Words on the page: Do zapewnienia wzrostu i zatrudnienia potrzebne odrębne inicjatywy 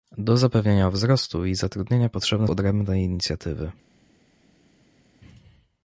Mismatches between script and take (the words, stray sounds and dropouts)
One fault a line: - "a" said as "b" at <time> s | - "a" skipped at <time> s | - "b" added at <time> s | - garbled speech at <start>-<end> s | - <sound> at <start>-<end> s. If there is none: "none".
none